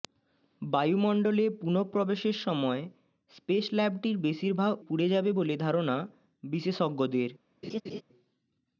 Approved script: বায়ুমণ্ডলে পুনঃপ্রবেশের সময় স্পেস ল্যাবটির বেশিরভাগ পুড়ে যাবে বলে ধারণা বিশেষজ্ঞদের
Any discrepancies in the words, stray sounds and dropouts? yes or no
yes